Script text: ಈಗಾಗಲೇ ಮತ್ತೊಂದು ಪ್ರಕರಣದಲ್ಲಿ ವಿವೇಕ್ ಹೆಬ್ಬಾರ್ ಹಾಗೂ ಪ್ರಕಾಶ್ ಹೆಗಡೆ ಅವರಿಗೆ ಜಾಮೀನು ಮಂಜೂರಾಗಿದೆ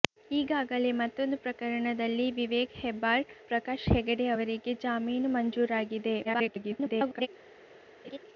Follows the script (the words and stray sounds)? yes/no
no